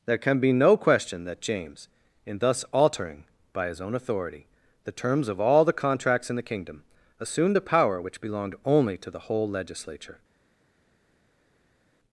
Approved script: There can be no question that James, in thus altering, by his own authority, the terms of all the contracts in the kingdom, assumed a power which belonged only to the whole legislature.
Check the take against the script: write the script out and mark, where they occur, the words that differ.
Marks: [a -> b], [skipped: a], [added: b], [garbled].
There can be no question that James, in thus altering, by his own authority, the terms of all the contracts in the kingdom, assumed a power which belonged only to the whole legislature.